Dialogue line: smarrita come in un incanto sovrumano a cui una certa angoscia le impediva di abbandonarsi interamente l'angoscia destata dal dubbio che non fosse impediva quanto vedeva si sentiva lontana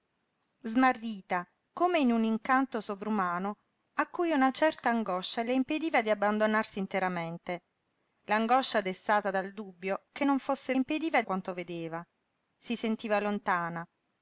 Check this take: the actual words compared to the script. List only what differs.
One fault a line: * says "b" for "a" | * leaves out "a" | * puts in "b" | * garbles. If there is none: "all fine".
all fine